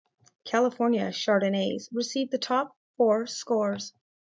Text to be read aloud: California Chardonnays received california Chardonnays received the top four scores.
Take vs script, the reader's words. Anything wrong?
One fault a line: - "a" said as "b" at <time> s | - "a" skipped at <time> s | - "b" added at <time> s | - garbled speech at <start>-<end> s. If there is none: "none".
- "california Chardonnays received" skipped at 2.3 s